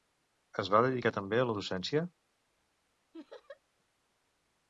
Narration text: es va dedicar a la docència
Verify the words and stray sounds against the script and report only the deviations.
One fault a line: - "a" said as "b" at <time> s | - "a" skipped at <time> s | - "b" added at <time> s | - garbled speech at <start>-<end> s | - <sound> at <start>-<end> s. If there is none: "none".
- "també" added at 1.2 s
- laugh at 3.1-3.6 s